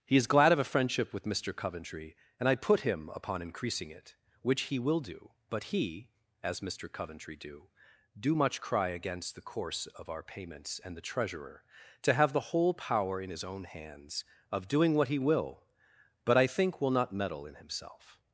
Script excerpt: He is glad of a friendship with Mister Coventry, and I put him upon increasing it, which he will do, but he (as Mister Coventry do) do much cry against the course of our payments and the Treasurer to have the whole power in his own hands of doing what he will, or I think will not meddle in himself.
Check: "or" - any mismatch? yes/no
yes